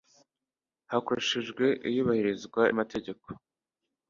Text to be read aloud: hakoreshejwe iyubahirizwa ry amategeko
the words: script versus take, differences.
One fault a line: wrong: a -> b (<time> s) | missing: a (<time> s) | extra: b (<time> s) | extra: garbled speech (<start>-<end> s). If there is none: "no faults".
missing: ry (2.6 s)